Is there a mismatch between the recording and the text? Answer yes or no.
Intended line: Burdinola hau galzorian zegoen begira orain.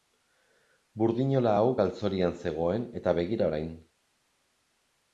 yes